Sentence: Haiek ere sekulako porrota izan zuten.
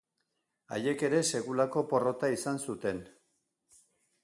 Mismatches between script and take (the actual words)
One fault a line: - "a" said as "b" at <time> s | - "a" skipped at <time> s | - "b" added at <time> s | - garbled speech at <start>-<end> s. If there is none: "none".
none